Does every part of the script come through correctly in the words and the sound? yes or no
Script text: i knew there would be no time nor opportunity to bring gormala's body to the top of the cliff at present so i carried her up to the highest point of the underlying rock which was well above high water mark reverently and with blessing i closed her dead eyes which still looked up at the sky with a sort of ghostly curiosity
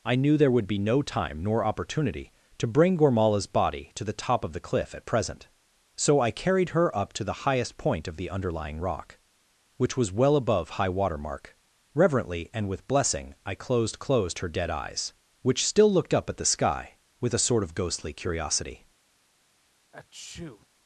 no